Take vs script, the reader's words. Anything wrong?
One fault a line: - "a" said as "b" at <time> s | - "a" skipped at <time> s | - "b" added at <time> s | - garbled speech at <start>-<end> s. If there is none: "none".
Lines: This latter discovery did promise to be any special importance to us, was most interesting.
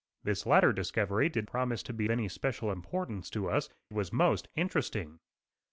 none